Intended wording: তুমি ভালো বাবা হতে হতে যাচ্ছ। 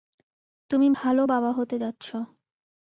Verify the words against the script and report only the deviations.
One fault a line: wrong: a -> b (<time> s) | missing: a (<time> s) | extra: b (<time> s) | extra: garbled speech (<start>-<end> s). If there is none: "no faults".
missing: হতে (1.8 s)